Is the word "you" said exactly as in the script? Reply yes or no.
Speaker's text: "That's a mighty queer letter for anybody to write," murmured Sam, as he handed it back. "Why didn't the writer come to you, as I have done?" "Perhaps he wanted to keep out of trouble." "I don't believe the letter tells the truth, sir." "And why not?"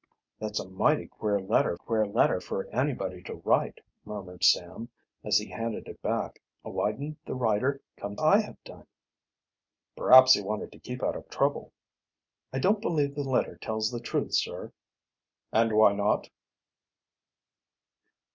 no